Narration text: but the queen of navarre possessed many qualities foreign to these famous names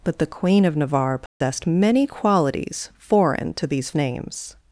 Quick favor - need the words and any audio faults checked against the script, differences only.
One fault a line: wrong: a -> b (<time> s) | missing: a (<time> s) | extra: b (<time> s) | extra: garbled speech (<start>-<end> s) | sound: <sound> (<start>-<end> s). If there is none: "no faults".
sound: dropout (1.3-1.4 s)
missing: famous (3.9 s)